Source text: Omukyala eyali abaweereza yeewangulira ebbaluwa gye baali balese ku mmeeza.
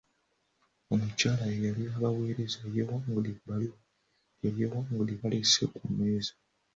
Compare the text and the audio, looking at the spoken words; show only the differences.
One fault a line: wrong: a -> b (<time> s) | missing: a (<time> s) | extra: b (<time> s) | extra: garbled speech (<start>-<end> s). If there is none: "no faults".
wrong: baali -> yeewangulira (4.6 s)